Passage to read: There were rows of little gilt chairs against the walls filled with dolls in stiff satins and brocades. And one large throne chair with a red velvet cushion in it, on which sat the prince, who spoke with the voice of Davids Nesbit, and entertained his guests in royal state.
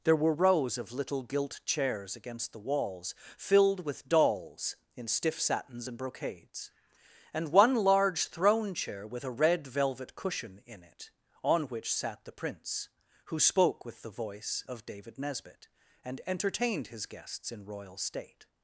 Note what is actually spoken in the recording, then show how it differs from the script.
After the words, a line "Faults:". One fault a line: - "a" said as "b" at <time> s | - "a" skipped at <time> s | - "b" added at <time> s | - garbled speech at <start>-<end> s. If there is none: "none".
There were rows of little gilt chairs against the walls filled with dolls in stiff satins and brocades. And one large throne chair with a red velvet cushion in it, on which sat the prince, who spoke with the voice of David Nesbit, and entertained his guests in royal state.
Faults:
- "Davids" said as "David" at 14.8 s